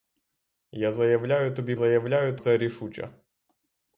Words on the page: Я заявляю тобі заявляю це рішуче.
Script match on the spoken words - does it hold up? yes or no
yes